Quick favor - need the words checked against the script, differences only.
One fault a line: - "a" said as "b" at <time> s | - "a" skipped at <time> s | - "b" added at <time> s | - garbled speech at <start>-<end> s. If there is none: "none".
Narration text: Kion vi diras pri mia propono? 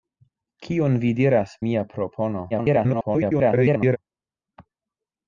- "pri" skipped at 1.5 s
- garbled speech at 2.5-4.0 s